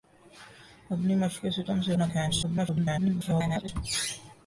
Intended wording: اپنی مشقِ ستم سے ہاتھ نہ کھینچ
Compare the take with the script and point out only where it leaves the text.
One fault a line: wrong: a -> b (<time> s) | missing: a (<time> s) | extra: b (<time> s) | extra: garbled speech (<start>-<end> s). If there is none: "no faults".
missing: ہاتھ (1.9 s)
extra: garbled speech (2.4-3.7 s)